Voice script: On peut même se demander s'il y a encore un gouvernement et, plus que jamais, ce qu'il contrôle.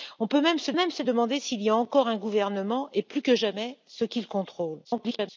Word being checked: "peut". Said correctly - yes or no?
yes